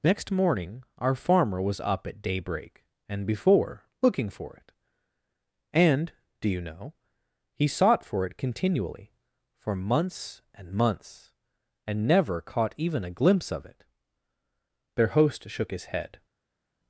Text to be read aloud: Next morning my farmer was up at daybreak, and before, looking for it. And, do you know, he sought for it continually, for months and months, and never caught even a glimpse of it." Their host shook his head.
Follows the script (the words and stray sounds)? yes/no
no